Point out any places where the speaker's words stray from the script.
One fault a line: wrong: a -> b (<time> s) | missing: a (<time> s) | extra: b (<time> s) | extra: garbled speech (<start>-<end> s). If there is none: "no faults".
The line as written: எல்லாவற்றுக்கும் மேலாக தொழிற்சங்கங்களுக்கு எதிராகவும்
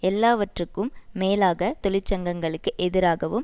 no faults